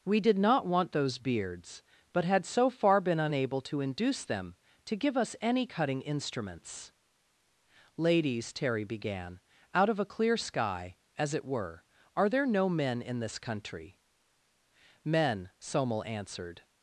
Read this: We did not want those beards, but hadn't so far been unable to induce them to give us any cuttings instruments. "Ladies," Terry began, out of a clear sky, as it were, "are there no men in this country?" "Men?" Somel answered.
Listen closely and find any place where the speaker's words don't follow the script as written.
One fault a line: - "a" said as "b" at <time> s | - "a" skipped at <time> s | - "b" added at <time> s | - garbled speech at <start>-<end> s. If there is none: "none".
- "hadn't" said as "had" at 2.2 s
- "cuttings" said as "cutting" at 5.6 s